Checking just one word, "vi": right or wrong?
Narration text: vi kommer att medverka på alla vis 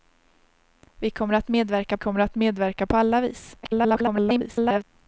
right